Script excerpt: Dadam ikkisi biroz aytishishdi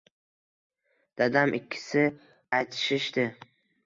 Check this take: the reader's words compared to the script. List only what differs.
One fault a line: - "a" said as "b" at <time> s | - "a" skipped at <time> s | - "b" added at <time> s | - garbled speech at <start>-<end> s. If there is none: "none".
- "biroz" skipped at 2.1 s